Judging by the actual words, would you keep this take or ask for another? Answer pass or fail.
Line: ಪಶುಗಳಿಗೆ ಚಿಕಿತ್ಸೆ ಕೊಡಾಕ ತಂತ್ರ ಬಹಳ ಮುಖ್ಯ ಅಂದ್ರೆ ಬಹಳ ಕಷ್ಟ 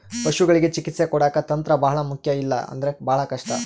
fail